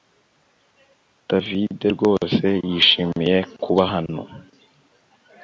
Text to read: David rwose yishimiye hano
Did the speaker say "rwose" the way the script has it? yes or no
yes